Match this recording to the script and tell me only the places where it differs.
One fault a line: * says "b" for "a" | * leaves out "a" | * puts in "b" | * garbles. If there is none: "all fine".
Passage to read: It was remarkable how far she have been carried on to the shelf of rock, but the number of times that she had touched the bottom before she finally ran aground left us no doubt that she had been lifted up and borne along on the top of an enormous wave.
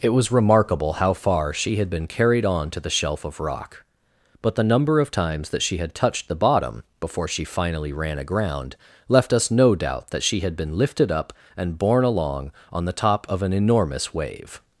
* says "had" for "have"